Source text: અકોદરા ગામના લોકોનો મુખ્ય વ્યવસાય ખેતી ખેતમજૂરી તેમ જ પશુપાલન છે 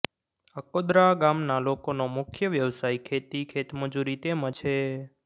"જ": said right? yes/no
no